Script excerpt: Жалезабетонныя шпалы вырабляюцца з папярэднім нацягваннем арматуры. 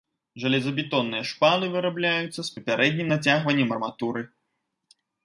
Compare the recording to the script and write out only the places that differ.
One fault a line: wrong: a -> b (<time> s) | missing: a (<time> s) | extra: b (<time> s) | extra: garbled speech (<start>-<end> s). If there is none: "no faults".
no faults